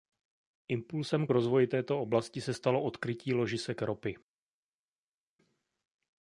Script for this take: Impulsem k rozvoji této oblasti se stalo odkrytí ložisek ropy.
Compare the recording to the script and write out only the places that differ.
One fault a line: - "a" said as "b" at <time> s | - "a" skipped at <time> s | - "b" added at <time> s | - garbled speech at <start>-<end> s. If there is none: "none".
none